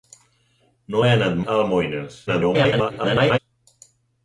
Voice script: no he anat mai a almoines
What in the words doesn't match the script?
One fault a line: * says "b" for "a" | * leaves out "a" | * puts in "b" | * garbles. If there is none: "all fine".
* leaves out "mai"
* garbles